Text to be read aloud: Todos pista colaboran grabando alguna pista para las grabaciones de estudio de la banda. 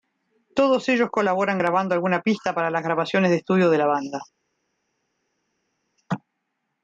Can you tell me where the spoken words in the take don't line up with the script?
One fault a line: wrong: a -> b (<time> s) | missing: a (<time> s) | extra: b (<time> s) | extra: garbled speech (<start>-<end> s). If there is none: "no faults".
wrong: pista -> ellos (0.9 s)